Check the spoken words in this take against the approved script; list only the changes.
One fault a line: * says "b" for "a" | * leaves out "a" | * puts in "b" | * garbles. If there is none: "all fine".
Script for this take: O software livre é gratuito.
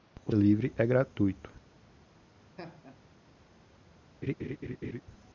* leaves out "software"